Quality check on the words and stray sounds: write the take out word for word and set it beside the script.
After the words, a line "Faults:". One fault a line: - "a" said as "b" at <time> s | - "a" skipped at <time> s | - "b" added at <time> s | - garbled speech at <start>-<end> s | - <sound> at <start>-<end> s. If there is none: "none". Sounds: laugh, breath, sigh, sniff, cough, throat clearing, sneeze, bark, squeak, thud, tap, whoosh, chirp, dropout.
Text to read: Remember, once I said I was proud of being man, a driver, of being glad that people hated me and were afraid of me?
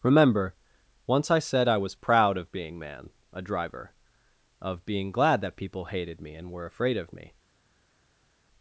Remember, once I said I was proud of being man, a driver, of being glad that people hated me and were afraid of me?
Faults:
none